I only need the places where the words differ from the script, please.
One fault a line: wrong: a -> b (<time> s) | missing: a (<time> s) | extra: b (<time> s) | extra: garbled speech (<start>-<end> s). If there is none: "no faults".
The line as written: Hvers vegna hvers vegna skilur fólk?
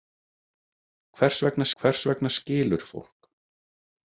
no faults